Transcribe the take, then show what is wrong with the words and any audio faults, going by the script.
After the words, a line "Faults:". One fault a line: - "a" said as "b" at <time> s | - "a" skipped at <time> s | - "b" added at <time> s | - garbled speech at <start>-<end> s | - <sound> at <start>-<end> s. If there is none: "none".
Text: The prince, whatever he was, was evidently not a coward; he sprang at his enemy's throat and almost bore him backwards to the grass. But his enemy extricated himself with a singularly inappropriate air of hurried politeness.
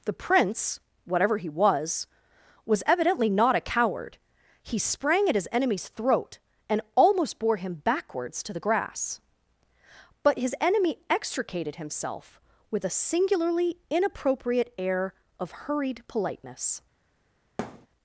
The prince, whatever he was, was evidently not a coward; he sprang at his enemy's throat and almost bore him backwards to the grass. But his enemy extricated himself with a singularly inappropriate air of hurried politeness.
Faults:
- thud at 17.6-17.9 s